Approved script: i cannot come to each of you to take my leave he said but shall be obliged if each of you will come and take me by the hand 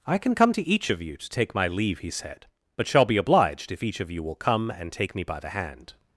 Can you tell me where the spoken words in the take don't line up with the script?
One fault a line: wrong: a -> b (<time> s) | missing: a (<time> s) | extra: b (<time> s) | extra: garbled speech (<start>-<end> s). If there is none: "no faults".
wrong: cannot -> can (0.2 s)